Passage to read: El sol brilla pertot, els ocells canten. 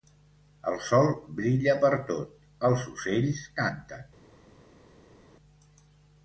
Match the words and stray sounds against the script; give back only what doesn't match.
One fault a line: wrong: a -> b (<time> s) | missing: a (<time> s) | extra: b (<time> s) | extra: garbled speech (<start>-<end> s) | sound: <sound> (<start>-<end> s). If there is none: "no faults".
no faults